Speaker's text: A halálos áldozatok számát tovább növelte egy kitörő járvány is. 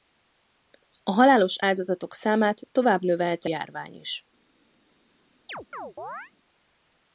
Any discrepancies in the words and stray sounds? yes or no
yes